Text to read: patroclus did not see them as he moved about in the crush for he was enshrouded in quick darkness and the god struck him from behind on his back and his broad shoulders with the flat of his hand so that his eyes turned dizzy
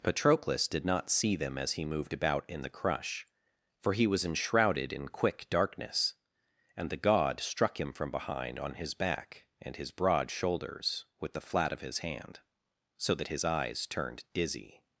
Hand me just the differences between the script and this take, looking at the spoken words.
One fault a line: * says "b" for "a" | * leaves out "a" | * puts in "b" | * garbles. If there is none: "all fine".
all fine